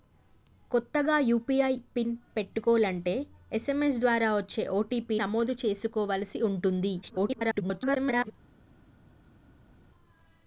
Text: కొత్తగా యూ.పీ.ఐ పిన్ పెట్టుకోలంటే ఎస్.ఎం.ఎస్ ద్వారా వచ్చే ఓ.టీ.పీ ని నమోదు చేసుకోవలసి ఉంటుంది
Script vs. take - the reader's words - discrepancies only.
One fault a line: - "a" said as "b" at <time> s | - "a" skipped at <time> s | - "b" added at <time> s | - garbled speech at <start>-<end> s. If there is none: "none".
- "ని" skipped at 5.2 s
- garbled speech at 7.0-8.3 s